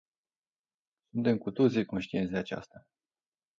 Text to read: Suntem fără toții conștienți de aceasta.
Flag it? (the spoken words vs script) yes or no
yes